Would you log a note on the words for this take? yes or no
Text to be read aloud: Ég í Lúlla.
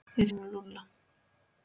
no